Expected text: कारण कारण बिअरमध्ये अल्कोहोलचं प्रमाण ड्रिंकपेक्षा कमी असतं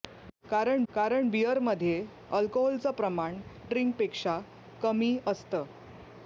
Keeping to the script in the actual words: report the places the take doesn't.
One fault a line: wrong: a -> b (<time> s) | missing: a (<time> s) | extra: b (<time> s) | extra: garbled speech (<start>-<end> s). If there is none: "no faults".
no faults